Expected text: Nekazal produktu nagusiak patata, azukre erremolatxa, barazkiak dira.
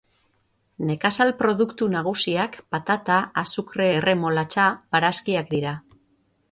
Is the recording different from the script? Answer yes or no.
no